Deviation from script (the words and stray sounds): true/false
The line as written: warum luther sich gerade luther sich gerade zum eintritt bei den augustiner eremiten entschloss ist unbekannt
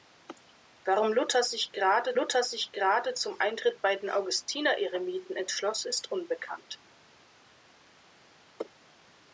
false